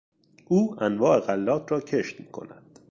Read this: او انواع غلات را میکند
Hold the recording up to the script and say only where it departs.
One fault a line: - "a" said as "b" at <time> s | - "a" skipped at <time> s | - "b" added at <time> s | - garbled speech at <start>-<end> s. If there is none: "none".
- "کشت" added at 1.8 s